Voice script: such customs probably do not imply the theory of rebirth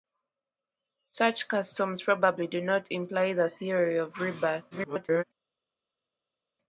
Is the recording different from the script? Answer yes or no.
yes